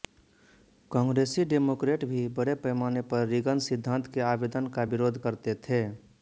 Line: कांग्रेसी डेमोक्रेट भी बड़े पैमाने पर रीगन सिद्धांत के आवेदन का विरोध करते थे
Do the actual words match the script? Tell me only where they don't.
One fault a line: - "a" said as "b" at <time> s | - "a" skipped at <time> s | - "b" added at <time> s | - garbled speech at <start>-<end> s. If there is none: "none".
none